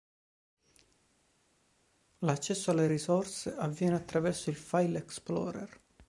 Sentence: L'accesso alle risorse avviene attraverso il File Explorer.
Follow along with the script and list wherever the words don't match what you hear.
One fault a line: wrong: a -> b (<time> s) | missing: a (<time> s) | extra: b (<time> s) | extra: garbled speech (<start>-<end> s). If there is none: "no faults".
no faults